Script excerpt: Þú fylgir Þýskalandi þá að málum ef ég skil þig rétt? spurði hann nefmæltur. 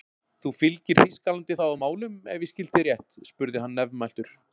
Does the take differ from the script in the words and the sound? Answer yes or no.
no